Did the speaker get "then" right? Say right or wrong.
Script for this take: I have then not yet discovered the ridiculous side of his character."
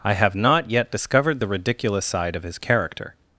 wrong